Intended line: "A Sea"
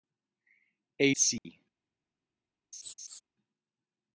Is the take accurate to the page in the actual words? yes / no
yes